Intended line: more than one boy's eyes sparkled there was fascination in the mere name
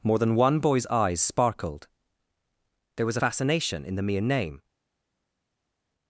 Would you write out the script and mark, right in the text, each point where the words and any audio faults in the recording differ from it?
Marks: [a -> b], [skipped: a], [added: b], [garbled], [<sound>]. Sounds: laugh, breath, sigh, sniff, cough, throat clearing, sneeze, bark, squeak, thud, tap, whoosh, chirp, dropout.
more than one boy's eyes sparkled there was fascination in the mere name